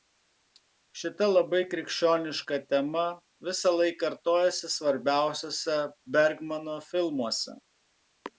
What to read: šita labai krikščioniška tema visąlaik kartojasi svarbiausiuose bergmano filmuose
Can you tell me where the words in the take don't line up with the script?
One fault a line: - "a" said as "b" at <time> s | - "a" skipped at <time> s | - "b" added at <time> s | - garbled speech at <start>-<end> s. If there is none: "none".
none